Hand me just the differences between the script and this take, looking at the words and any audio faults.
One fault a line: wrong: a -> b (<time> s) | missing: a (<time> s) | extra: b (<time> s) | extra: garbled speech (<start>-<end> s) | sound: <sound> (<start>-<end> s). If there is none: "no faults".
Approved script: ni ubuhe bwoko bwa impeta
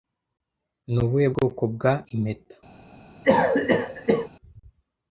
sound: cough (3.2-4.3 s)